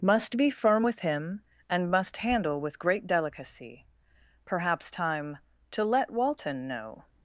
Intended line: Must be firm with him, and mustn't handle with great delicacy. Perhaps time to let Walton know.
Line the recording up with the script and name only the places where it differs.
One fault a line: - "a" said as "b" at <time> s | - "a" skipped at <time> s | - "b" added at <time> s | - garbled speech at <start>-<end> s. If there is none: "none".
- "mustn't" said as "must" at 1.9 s